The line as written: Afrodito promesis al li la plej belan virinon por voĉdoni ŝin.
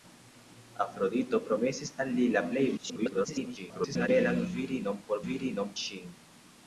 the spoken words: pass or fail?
fail